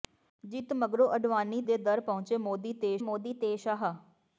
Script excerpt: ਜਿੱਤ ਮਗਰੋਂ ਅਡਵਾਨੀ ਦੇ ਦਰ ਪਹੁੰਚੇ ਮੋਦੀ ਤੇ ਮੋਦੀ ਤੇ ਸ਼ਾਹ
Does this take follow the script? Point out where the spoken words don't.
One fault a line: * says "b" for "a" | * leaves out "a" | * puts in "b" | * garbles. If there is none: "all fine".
all fine